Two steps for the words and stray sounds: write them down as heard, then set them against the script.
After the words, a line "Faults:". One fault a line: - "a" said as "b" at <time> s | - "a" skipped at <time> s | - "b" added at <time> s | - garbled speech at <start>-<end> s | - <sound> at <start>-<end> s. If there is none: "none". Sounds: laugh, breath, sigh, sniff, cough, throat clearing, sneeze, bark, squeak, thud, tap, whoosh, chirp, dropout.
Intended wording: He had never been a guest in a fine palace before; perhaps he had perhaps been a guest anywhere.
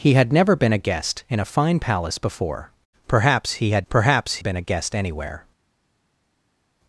He had never been a guest in a fine palace before; perhaps he had perhaps been a guest anywhere.
Faults:
none